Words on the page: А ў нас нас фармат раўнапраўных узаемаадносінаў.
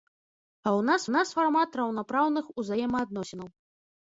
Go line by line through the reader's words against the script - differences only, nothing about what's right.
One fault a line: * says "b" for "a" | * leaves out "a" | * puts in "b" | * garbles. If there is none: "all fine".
all fine